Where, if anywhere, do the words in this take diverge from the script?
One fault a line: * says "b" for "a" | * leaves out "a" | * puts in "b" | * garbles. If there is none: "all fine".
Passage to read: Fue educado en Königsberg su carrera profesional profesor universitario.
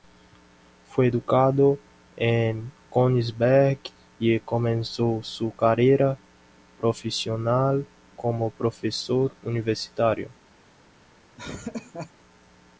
* puts in "y comenzó"
* puts in "como"